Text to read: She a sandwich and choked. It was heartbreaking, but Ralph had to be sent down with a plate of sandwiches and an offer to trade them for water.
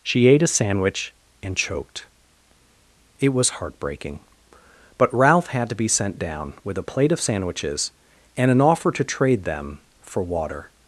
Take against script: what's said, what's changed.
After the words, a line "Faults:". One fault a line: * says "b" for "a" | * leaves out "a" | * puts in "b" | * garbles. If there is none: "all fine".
She ate a sandwich and choked. It was heartbreaking, but Ralph had to be sent down with a plate of sandwiches and an offer to trade them for water.
Faults:
* puts in "ate"